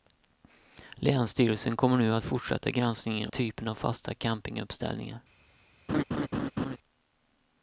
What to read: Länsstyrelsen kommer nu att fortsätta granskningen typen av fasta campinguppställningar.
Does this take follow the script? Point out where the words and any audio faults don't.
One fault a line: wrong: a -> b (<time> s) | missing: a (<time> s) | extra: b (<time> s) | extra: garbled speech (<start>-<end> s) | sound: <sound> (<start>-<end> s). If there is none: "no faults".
sound: laugh (5.9-6.8 s)